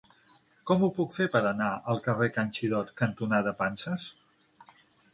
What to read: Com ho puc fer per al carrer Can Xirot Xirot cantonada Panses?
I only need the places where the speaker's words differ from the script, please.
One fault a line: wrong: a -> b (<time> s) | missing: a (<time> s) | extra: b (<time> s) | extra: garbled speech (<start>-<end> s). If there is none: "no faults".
extra: anar (1.5 s)
missing: Xirot (2.9 s)